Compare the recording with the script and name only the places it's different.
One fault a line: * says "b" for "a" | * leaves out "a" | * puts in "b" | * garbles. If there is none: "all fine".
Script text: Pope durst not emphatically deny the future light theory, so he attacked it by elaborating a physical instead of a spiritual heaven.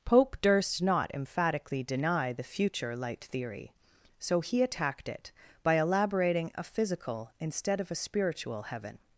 all fine